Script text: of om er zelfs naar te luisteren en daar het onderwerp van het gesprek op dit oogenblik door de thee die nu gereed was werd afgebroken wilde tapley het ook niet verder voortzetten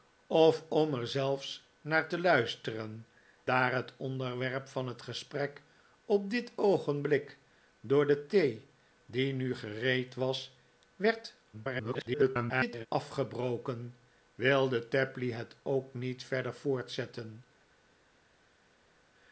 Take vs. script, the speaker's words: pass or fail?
fail